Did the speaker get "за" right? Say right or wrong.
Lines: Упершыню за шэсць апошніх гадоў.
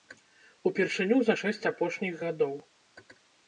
right